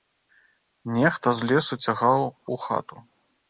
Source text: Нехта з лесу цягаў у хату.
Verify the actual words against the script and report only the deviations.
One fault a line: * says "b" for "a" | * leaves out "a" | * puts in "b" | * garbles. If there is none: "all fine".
all fine